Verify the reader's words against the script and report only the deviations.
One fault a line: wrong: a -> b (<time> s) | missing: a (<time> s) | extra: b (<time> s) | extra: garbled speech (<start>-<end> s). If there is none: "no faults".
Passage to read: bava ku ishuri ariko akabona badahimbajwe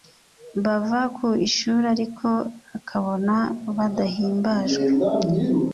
no faults